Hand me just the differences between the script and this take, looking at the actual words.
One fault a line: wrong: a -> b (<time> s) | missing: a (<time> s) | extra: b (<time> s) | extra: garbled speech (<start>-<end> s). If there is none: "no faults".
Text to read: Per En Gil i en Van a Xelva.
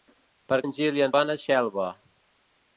no faults